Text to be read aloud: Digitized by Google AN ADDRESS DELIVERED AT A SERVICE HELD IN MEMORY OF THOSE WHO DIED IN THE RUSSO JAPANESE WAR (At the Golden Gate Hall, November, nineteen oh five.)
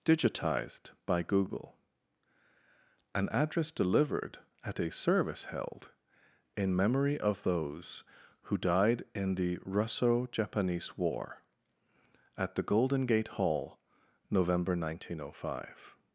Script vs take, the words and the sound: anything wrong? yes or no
no